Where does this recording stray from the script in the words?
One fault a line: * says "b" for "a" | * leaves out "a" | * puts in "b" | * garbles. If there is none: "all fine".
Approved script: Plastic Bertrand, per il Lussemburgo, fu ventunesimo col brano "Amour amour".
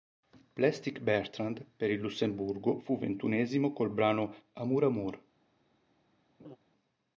all fine